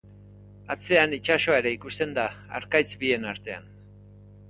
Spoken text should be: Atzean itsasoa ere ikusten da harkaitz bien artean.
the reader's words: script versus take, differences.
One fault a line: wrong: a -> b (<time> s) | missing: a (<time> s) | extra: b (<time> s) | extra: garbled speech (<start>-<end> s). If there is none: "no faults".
no faults